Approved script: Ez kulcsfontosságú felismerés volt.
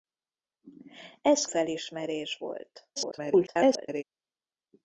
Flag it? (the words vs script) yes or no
yes